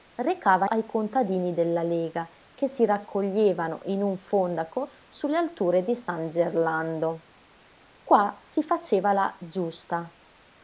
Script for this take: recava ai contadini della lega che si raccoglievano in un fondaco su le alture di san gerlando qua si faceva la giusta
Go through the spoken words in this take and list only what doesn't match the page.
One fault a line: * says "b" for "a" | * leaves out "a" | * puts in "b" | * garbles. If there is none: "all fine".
all fine